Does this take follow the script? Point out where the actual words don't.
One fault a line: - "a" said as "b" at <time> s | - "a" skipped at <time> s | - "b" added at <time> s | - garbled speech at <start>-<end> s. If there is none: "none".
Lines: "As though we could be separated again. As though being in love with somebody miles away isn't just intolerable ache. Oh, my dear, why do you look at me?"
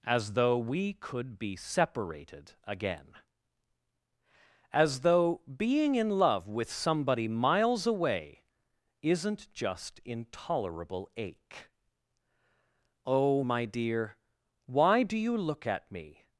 none